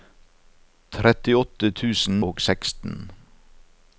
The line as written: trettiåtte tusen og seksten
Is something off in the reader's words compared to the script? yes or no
no